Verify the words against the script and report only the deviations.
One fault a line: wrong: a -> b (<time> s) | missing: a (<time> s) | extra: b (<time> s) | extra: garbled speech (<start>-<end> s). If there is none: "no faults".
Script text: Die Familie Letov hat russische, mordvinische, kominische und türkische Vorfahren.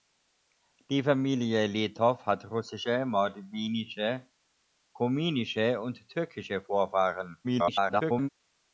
extra: garbled speech (7.4-8.3 s)